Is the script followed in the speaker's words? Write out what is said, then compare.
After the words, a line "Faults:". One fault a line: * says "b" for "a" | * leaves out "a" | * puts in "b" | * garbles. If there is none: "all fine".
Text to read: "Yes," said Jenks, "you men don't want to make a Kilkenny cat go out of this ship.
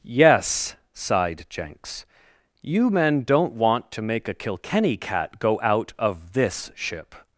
"Yes," sighed Jenks, "you men don't want to make a Kilkenny cat go out of this ship.
Faults:
* says "sighed" for "said"